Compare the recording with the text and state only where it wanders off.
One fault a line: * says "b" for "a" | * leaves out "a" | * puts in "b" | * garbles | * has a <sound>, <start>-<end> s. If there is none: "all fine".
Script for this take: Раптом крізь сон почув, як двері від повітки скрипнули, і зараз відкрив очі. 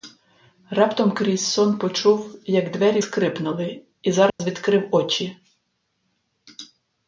* leaves out "від повітки"
* has a dropout, 4.3-4.4 s